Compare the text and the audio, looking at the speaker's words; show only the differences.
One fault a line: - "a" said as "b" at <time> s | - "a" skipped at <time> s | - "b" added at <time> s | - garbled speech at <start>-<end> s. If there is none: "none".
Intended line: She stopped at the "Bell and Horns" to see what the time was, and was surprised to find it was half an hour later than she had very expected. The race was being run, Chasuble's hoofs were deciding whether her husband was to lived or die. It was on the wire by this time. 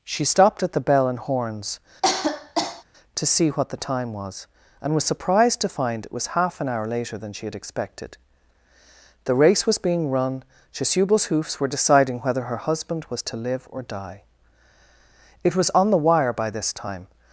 - "very" skipped at 7.6 s
- "lived" said as "live" at 13.4 s